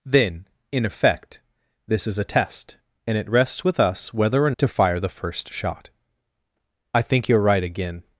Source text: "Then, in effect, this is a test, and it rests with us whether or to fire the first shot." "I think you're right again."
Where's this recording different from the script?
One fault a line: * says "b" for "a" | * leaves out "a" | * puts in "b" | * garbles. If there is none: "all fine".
all fine